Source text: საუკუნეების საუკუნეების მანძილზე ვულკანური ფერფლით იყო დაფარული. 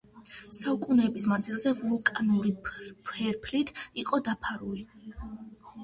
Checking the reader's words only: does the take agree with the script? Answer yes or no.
no